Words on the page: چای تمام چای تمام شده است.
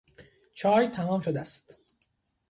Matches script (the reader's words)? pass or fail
fail